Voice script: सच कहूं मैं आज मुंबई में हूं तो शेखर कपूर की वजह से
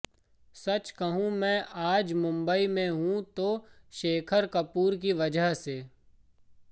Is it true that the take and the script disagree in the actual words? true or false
false